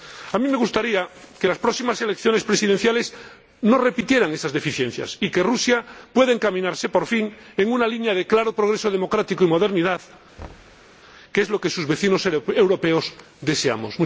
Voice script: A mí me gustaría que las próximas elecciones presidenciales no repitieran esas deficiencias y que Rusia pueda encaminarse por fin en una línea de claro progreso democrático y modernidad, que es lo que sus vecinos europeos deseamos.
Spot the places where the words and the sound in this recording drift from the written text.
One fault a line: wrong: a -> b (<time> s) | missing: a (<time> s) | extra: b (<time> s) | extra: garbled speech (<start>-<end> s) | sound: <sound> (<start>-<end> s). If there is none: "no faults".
sound: thud (10.4-10.9 s)